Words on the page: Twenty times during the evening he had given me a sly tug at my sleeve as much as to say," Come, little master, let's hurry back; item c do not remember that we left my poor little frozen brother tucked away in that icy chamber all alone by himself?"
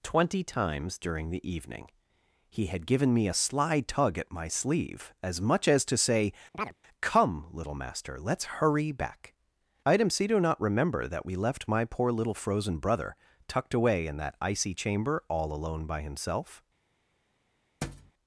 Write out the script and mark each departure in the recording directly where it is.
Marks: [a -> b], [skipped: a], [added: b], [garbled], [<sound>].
Twenty times during the evening he had given me a sly tug at my sleeve as much as to say," [chirp] Come, little master, let's hurry back; item c do not remember that we left my poor little frozen brother tucked away in that icy chamber all alone by himself?" [thud]